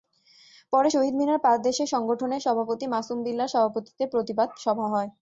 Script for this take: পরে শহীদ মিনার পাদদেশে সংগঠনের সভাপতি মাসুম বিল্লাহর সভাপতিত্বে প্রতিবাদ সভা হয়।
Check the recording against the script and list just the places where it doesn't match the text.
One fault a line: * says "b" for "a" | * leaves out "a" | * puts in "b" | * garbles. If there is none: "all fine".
all fine